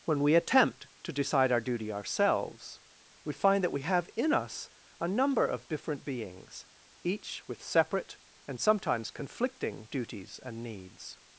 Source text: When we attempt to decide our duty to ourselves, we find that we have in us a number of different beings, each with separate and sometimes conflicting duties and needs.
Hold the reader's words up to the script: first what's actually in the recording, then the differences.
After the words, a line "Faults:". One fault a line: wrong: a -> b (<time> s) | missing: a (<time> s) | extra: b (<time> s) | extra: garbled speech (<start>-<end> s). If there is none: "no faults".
When we attempt to decide our duty ourselves, we find that we have in us a number of different beings, each with separate and sometimes conflicting duties and needs.
Faults:
missing: to (1.9 s)